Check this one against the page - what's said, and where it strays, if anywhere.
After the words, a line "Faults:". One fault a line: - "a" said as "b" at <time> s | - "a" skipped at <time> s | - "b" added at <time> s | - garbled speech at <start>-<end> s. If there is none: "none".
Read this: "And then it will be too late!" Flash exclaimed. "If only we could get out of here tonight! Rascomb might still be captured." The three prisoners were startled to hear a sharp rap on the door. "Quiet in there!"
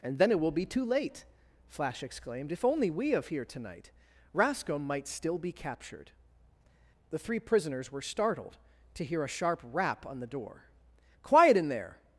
"And then it will be too late!" Flash exclaimed. "If only we of here tonight! Rascomb might still be captured." The three prisoners were startled to hear a sharp rap on the door. "Quiet in there!"
Faults:
- "could get out" skipped at 3.1 s